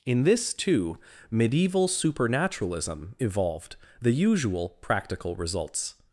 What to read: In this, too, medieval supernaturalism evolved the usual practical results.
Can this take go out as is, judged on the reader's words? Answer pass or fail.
pass